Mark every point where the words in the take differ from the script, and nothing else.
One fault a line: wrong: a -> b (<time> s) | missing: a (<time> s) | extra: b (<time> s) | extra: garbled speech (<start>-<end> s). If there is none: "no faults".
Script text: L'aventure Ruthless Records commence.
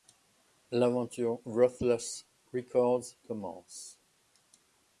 no faults